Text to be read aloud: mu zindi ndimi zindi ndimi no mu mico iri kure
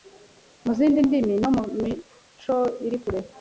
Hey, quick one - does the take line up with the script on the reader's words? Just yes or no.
no